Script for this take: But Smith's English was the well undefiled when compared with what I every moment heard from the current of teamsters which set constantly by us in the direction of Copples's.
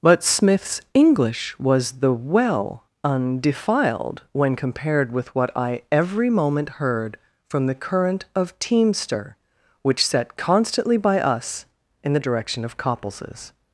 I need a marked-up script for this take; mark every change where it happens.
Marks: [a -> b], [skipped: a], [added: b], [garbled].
But Smith's English was the well undefiled when compared with what I every moment heard from the current of [teamsters -> teamster] which set constantly by us in the direction of Copples's.